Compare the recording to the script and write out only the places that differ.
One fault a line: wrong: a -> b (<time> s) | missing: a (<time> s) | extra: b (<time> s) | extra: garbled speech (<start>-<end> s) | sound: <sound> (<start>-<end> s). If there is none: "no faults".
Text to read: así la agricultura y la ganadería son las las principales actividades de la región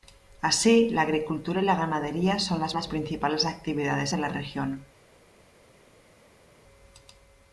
no faults